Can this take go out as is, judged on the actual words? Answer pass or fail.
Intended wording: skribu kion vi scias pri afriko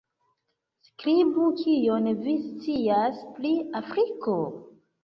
pass